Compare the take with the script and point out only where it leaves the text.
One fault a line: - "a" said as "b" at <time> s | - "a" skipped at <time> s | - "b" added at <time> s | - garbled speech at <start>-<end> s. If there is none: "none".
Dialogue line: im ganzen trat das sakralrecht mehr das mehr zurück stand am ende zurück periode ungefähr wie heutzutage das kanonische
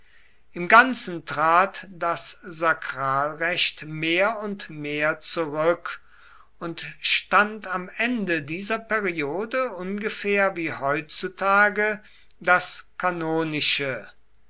- "das" said as "und" at 4.4 s
- "und" added at 6.6 s
- "zurück" said as "dieser" at 8.4 s